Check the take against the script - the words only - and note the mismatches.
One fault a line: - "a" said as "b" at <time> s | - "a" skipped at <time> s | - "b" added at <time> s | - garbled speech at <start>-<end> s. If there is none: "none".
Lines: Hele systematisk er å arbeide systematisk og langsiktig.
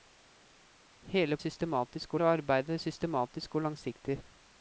none